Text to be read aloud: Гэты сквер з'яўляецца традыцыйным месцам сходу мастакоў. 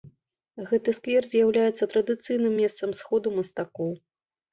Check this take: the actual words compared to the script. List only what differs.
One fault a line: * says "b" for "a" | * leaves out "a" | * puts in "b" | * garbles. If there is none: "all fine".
all fine